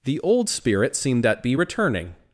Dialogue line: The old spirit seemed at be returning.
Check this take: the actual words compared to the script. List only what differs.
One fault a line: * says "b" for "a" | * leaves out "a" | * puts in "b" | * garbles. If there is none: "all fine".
all fine